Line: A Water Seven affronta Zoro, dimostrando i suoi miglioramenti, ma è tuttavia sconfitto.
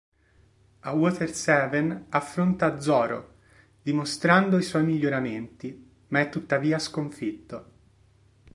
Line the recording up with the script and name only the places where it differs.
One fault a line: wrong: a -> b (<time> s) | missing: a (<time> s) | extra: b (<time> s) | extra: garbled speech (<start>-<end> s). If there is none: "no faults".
no faults